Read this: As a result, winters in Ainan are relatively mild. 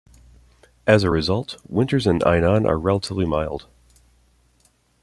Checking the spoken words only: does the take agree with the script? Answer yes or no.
yes